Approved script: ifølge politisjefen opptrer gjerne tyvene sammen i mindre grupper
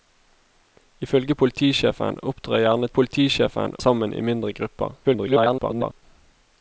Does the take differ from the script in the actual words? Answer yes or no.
yes